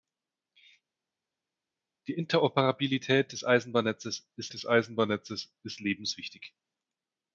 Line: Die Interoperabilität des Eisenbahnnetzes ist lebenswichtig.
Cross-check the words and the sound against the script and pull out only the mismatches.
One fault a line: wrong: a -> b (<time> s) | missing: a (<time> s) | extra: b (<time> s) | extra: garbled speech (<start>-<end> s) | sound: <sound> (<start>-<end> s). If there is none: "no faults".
extra: des Eisenbahnnetzes ist (4.5 s)